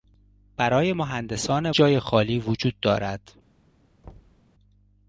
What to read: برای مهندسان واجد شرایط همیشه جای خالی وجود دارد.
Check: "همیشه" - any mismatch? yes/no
yes